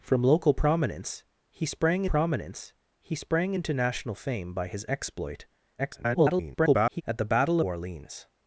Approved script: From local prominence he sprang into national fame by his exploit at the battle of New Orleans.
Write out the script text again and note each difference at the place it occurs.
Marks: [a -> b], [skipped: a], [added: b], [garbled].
From local prominence he sprang [added: prominence he sprang] into national fame by his exploit [garbled] at the battle [skipped: of New] Orleans.